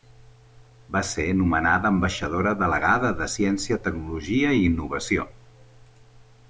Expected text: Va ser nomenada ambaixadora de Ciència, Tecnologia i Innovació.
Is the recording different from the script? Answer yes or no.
yes